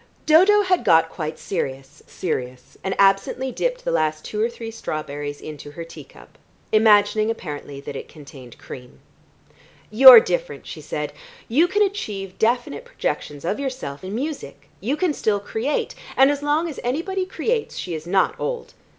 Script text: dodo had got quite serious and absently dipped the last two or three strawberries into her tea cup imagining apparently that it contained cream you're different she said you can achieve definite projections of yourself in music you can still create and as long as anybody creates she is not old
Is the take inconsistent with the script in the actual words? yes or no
yes